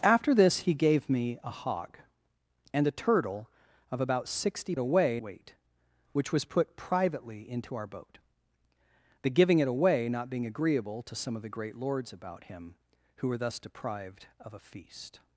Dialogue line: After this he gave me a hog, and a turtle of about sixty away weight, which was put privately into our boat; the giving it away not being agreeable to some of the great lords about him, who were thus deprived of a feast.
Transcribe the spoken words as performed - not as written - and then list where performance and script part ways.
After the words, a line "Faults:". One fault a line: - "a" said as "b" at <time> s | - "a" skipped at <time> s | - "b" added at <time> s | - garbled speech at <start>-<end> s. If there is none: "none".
After this he gave me a hog, and a turtle of about sixty away weight, which was put privately into our boat; the giving it away not being agreeable to some of the great lords about him, who were thus deprived of a feast.
Faults:
none